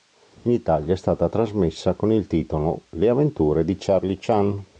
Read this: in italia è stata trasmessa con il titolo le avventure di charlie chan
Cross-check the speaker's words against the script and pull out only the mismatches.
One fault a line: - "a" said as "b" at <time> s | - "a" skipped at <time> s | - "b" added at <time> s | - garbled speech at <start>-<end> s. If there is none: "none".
none